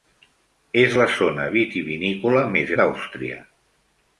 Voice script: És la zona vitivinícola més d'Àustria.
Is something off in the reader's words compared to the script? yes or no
no